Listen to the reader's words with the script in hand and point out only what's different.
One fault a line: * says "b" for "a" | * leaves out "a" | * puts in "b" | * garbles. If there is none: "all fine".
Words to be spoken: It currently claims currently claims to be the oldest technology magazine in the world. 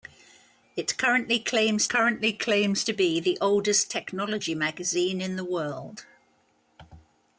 all fine